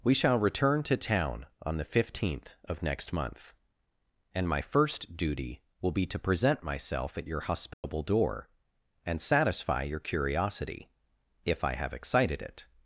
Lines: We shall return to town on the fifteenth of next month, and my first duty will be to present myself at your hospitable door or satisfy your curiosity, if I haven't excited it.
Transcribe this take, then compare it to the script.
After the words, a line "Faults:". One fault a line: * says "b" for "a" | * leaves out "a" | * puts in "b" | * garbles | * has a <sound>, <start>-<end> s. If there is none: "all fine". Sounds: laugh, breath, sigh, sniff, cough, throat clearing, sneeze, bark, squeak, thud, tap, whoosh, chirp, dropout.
We shall return to town on the fifteenth of next month, and my first duty will be to present myself at your hospitable door and satisfy your curiosity, if I have excited it.
Faults:
* has a dropout, 7.7-7.8 s
* says "and" for "or"
* says "have" for "haven't"